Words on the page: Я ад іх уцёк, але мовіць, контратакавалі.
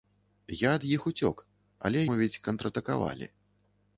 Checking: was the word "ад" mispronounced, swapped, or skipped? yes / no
no